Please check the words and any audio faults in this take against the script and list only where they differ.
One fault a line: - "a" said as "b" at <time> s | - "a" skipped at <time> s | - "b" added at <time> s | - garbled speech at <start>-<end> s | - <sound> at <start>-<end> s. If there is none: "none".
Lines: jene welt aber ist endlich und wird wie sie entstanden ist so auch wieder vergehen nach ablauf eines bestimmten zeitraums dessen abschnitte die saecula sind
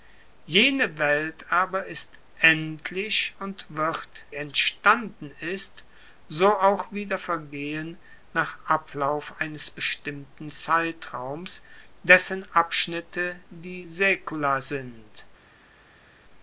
- "wie sie" skipped at 4.2 s